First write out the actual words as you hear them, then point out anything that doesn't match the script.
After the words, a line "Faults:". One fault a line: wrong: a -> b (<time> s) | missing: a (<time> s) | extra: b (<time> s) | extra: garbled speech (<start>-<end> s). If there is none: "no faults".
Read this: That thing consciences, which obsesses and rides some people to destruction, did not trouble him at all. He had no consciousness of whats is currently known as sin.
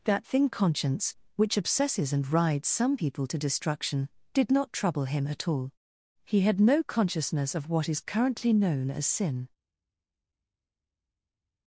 That thing conscience, which obsesses and rides some people to destruction, did not trouble him at all. He had no consciousness of what is currently known as sin.
Faults:
wrong: consciences -> conscience (0.5 s)
wrong: whats -> what (7.7 s)